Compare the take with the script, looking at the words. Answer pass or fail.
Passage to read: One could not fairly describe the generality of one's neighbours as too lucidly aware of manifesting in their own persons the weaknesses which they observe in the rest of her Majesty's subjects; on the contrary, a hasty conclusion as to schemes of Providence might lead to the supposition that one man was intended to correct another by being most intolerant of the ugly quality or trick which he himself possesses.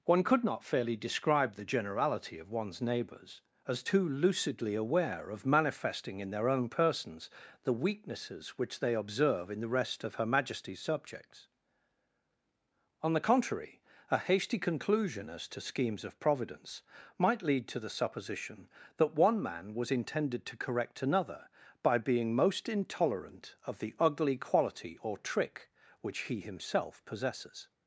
pass